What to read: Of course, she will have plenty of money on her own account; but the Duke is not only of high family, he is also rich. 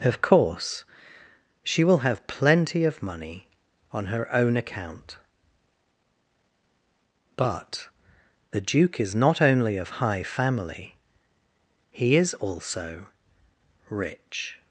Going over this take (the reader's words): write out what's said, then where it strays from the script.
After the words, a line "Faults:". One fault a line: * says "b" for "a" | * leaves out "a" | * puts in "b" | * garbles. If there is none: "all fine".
Of course, she will have plenty of money on her own account; but the Duke is not only of high family, he is also rich.
Faults:
all fine